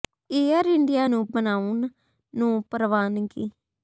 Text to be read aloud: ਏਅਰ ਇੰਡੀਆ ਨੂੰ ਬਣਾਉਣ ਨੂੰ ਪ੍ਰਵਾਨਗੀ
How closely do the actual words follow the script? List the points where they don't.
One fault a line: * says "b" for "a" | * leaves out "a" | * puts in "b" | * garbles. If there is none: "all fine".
all fine